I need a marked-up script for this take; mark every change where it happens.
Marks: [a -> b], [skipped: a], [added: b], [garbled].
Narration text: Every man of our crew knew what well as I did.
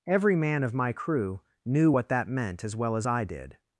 Every man of [our -> my] crew knew what [added: that meant as] well as I did.